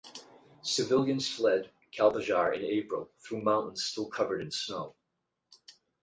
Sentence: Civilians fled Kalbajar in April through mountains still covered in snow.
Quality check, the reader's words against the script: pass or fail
pass